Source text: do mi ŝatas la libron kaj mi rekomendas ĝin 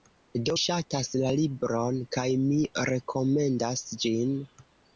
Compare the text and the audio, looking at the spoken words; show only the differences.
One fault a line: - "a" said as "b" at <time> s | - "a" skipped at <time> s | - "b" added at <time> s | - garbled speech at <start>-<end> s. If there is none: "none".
- "mi" skipped at 0.5 s